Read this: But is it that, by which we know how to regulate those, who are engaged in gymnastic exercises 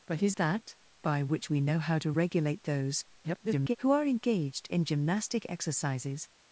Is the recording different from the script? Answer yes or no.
yes